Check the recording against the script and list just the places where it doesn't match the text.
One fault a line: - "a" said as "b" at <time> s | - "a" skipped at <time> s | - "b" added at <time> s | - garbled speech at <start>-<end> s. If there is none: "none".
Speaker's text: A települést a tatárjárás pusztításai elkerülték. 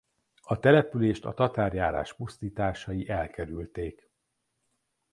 none